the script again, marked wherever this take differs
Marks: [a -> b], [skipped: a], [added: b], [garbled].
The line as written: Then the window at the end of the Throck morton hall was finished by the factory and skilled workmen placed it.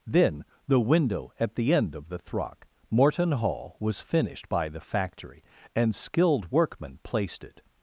Then the window at the end of the Throck morton hall was finished by the factory and skilled workmen placed it.